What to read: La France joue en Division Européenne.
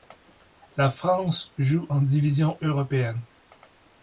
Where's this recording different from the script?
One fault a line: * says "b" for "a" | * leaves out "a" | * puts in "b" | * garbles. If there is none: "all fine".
all fine